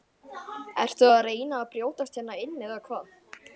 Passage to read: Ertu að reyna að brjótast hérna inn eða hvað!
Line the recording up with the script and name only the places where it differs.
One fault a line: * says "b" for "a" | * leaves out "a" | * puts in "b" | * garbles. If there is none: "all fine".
all fine